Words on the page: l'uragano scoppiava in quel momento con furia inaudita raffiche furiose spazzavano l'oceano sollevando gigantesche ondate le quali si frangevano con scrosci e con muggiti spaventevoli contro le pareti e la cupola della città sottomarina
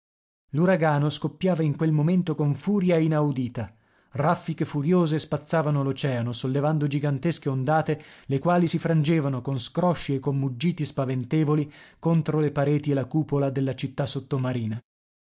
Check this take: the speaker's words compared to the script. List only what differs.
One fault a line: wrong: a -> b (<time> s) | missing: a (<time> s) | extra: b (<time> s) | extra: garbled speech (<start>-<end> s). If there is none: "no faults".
no faults